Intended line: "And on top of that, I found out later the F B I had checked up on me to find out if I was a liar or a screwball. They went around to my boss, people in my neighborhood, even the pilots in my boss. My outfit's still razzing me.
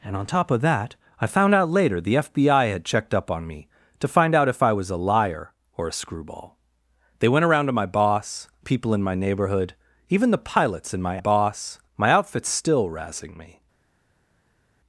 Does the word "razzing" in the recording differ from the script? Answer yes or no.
no